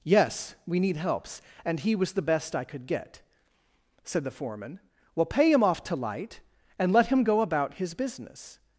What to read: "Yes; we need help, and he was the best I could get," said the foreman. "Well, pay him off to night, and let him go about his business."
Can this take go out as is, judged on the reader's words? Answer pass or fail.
fail